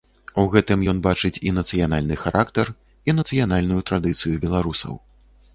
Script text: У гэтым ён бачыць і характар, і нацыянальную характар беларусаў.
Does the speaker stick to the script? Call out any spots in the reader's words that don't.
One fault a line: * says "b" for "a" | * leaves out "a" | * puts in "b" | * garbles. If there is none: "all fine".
* puts in "нацыянальны"
* says "традыцыю" for "характар"